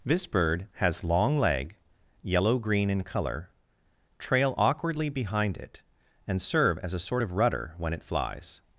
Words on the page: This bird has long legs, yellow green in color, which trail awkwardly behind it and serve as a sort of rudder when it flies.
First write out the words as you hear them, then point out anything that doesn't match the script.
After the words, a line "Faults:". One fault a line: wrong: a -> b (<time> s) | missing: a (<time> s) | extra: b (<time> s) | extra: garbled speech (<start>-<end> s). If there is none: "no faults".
This bird has long leg, yellow green in color, trail awkwardly behind it and serve as a sort of rudder when it flies.
Faults:
wrong: legs -> leg (1.4 s)
missing: which (3.5 s)